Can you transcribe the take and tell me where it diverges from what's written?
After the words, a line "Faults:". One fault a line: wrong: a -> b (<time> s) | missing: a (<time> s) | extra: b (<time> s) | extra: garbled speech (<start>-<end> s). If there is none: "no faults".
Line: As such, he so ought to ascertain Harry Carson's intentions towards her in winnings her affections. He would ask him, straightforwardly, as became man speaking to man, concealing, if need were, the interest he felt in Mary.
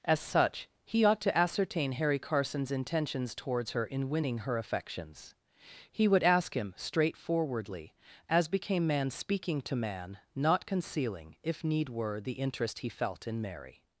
As such, he ought to ascertain Harry Carson's intentions towards her in winning her affections. He would ask him, straightforwardly, as became man speaking to man, not concealing, if need were, the interest he felt in Mary.
Faults:
missing: so (1.1 s)
wrong: winnings -> winning (4.1 s)
extra: not (10.3 s)